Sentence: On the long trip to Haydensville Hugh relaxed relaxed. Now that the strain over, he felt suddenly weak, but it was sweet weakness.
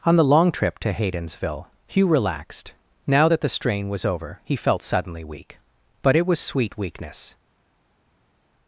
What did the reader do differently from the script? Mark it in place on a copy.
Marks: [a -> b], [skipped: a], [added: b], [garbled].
On the long trip to Haydensville Hugh relaxed [skipped: relaxed.] Now that the strain [added: was] over, he felt suddenly weak, but it was sweet weakness.